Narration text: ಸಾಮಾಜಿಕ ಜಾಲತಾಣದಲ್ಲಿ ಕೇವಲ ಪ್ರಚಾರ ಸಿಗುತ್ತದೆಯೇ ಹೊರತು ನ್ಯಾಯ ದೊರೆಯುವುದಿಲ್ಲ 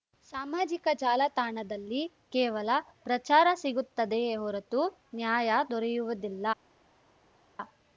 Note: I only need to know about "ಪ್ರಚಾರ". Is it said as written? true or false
true